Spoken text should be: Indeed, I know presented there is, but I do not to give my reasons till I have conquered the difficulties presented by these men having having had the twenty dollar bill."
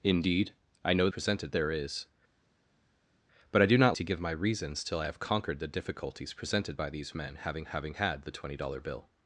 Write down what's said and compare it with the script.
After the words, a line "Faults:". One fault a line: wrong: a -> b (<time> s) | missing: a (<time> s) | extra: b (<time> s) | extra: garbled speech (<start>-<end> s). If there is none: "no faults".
Indeed, I know presented there is, but I do not to give my reasons till I have conquered the difficulties presented by these men having having had the twenty dollar bill."
Faults:
no faults